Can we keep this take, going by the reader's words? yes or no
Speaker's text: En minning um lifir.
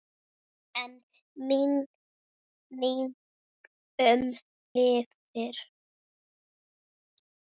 yes